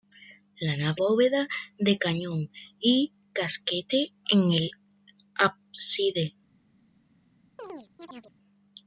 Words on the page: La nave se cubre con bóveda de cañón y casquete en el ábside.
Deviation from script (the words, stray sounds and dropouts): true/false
true